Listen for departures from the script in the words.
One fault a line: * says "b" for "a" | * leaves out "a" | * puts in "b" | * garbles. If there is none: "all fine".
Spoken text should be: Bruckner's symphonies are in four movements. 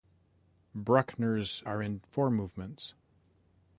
* leaves out "symphonies"